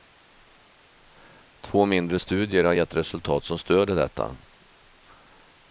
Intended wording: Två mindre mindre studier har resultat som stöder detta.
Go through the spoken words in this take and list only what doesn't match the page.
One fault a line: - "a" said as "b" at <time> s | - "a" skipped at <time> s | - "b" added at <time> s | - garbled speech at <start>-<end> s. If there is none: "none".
- "mindre" skipped at 2.2 s
- "gett" added at 2.7 s